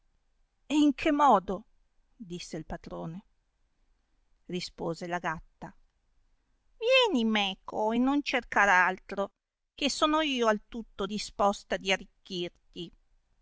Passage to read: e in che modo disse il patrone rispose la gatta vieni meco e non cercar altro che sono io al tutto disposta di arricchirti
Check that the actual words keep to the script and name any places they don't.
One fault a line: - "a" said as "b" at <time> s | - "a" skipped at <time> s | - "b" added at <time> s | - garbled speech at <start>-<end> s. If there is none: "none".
none